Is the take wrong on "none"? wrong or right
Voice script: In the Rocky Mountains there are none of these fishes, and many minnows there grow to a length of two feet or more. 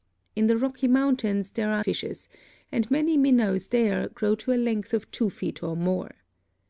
wrong